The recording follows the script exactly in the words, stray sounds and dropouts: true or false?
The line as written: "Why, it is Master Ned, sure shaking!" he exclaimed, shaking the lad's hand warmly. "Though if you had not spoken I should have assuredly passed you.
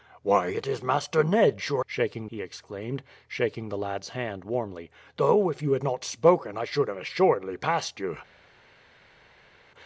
true